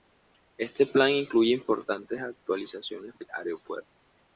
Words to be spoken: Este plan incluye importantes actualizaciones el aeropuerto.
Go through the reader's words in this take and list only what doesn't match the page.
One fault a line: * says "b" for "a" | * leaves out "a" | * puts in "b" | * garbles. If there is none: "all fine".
all fine